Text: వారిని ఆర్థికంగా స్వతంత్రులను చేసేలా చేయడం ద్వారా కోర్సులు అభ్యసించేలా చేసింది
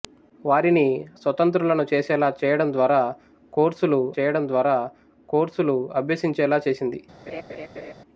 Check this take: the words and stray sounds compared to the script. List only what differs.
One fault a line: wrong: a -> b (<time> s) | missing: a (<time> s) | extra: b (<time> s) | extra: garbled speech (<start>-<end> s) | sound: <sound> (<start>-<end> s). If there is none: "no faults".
missing: ఆర్థికంగా (0.8 s)
extra: చేయడం ద్వారా కోర్సులు (4.1 s)
sound: laugh (7.3-7.9 s)